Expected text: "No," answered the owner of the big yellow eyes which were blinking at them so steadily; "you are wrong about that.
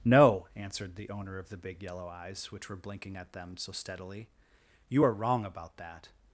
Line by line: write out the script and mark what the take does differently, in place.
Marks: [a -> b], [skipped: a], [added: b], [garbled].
"No," answered the owner of the big yellow eyes which were blinking at them so steadily; "you are wrong about that.